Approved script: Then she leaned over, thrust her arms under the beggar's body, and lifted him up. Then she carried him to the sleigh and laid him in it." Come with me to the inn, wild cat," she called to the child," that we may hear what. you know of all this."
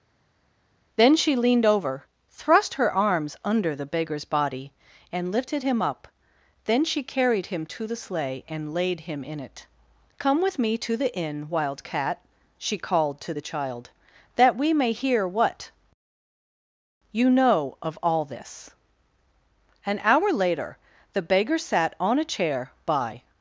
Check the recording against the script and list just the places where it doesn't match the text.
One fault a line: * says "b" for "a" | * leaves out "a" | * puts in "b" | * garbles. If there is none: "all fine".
* puts in "An hour later the beggar sat on a chair by"